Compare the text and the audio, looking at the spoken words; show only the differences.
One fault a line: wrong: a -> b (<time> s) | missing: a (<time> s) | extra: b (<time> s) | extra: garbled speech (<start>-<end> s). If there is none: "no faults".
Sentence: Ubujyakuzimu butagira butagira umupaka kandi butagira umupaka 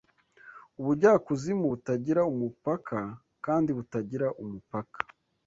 missing: butagira (2.2 s)